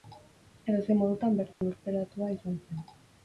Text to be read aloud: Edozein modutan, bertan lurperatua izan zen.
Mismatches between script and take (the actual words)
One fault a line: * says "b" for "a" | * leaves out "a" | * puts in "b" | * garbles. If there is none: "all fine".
all fine